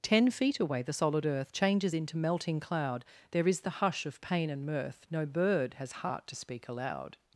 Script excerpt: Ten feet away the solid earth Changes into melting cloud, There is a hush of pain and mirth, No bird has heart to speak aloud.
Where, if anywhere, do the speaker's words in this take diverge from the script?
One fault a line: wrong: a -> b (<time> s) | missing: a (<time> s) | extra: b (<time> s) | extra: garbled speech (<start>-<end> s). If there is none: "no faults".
wrong: a -> the (3.6 s)